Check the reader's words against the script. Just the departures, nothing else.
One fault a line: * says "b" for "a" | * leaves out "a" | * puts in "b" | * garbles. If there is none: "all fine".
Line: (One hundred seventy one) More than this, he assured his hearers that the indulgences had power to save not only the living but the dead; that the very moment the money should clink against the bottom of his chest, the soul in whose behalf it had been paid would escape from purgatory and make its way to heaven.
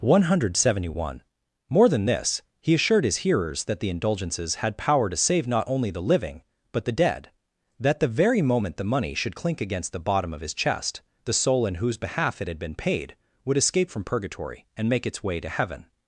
all fine